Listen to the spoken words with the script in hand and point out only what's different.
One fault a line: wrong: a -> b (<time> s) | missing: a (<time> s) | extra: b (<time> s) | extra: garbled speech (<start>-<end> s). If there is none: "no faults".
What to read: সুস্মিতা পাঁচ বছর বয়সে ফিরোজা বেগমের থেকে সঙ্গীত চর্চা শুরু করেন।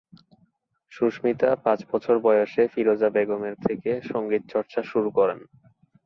no faults